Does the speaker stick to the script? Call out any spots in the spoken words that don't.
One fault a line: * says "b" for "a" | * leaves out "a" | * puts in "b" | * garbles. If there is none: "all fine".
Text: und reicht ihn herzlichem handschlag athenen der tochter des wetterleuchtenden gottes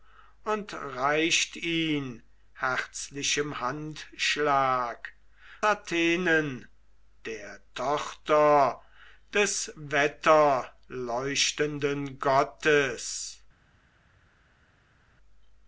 all fine